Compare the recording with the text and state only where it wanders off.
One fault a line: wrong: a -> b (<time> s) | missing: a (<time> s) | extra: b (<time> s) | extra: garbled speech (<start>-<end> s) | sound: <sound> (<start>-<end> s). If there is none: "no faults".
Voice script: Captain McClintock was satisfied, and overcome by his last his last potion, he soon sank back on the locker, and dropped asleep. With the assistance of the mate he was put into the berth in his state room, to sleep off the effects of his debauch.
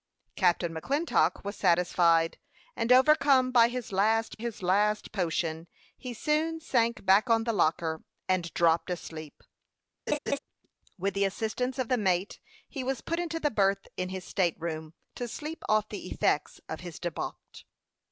sound: laugh (10.1-10.4 s)